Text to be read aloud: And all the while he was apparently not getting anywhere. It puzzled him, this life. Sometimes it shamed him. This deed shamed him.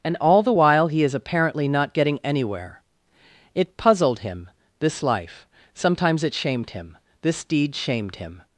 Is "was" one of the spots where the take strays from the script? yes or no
yes